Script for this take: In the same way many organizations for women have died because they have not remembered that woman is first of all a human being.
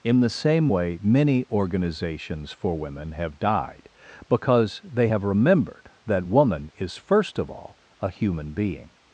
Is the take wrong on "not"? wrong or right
wrong